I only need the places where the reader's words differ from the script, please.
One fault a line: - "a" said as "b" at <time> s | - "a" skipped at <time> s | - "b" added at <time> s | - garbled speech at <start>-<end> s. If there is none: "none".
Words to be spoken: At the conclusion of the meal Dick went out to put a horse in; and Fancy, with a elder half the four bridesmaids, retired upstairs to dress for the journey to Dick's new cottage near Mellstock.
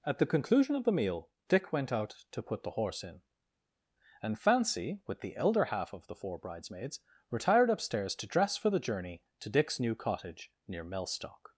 - "a" said as "the" at 2.6 s
- "a" said as "the" at 5.2 s
- "of" added at 5.9 s